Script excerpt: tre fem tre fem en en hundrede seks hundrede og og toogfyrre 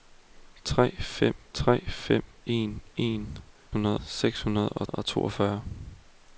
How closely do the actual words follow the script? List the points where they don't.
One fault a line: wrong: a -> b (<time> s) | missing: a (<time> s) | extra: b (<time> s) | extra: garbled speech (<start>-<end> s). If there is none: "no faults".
no faults